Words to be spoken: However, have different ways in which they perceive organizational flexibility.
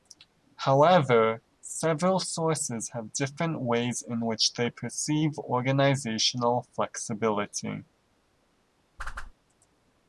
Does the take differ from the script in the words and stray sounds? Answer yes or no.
yes